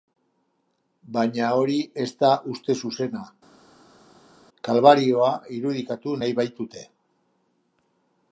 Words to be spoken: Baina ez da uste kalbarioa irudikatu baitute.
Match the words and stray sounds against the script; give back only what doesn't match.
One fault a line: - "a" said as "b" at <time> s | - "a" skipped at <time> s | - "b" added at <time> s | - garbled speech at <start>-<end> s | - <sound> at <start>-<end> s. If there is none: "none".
- "hori" added at 1.6 s
- "zuzena" added at 2.8 s
- "nahi" added at 6.2 s